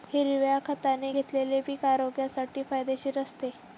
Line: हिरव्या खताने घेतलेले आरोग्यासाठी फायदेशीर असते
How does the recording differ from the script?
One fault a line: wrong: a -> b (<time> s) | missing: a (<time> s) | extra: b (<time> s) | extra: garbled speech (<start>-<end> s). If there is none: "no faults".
extra: पीक (1.6 s)